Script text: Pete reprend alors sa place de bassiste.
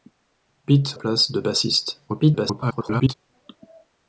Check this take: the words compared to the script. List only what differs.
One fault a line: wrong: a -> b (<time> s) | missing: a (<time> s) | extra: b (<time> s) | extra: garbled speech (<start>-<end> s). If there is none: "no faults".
missing: reprend alors sa (0.9 s)
extra: garbled speech (2.1-3.1 s)